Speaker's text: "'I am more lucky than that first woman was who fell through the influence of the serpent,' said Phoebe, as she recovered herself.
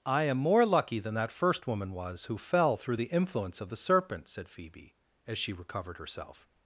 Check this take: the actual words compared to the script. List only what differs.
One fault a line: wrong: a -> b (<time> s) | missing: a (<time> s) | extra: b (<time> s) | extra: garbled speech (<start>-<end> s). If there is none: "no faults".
no faults